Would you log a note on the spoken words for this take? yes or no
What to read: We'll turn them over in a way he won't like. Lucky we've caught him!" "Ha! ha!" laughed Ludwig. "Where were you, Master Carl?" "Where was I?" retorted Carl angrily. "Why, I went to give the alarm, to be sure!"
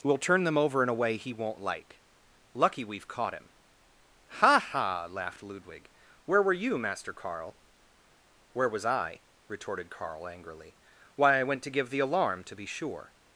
no